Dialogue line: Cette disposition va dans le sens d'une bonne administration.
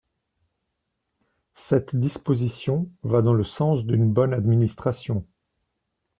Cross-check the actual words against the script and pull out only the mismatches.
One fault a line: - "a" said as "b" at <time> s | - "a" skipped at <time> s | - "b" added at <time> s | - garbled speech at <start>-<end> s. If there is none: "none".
none